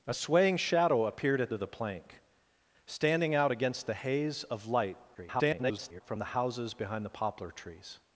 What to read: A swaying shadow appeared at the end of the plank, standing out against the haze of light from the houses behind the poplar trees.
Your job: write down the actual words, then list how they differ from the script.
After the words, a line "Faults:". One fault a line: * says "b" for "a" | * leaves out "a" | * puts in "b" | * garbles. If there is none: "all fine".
A swaying shadow appeared at of the plank, standing out against the haze of light [garbled] from the houses behind the poplar trees.
Faults:
* leaves out "the end"
* garbles